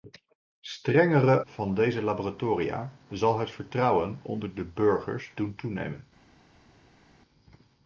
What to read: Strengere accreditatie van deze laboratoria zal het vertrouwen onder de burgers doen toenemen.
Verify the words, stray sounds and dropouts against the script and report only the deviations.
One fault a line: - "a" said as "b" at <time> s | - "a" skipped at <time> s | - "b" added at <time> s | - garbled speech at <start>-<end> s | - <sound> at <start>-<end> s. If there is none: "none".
- "accreditatie" skipped at 1.4 s